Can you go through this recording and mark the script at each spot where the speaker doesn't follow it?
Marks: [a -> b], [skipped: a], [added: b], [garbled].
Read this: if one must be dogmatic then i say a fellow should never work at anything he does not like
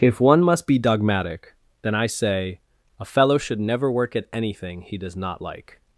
if one must be dogmatic then i say a fellow should never work at anything he does not like